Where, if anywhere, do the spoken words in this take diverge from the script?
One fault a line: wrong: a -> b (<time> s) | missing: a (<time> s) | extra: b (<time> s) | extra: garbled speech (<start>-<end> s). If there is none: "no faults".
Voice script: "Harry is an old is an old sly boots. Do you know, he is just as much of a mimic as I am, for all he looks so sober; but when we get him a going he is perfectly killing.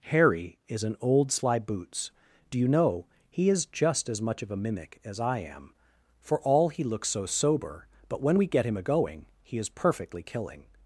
missing: is an old (1.3 s)